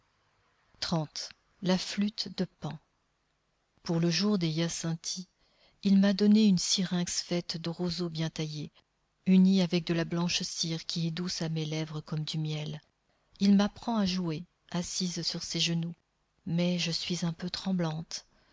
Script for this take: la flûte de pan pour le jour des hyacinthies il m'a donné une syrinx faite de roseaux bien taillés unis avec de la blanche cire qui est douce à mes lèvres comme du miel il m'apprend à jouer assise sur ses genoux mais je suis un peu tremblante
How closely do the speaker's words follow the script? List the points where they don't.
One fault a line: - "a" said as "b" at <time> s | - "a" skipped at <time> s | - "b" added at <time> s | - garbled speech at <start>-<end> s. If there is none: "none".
none